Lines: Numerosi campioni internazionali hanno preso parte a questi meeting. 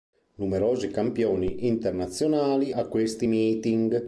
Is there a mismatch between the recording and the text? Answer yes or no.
yes